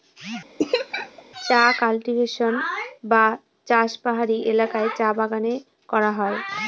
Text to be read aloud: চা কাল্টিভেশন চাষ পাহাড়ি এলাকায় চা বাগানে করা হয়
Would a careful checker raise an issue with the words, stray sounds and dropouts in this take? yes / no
yes